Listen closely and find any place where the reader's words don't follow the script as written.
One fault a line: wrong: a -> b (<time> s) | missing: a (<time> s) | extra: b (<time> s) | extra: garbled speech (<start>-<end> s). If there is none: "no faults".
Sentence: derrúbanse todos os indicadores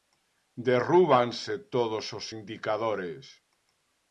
no faults